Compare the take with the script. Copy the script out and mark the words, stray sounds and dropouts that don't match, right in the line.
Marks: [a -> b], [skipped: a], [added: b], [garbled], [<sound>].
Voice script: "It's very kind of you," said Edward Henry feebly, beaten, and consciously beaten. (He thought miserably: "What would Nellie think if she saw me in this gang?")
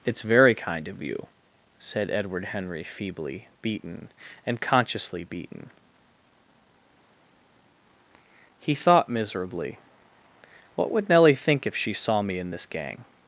"It's very kind of you," said Edward Henry feebly, beaten, and consciously beaten. (He thought miserably: "What would Nellie think if she saw me in this gang?")